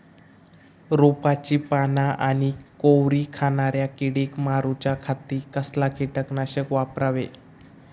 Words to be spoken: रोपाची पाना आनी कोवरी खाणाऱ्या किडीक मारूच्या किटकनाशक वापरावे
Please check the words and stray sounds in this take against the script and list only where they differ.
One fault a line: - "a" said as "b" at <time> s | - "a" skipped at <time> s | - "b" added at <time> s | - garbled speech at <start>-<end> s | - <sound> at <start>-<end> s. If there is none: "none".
- "खाती कसला" added at 5.0 s